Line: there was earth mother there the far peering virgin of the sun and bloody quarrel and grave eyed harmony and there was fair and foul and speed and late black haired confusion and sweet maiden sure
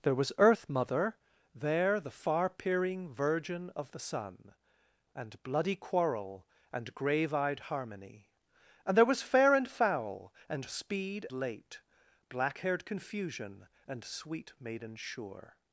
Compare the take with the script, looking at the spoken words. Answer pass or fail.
fail